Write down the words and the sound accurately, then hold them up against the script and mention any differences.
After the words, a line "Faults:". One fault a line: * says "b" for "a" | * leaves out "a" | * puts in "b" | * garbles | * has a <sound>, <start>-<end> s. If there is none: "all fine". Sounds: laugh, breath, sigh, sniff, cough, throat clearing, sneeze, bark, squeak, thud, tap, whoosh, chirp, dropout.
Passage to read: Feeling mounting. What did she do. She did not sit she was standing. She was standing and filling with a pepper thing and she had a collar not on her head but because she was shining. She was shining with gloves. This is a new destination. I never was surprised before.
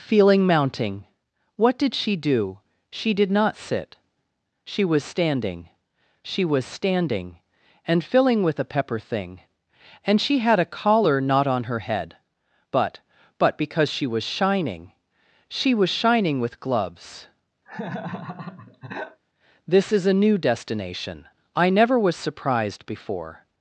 Feeling mounting. What did she do. She did not sit she was standing. She was standing and filling with a pepper thing and she had a collar not on her head but but because she was shining. She was shining with gloves. This is a new destination. I never was surprised before.
Faults:
* puts in "but"
* has a laugh, 17.7-19.2 s